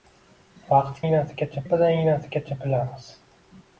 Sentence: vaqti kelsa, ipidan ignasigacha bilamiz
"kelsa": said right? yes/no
no